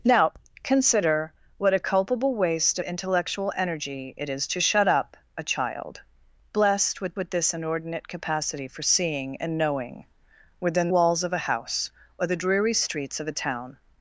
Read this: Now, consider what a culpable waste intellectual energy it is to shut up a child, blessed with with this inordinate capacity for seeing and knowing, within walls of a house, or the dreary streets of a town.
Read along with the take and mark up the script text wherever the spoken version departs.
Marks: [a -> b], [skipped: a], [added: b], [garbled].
Now, consider what a culpable waste intellectual energy it is to shut up a child, blessed with with this inordinate capacity for seeing and knowing, within walls of a house, or the dreary streets of a town.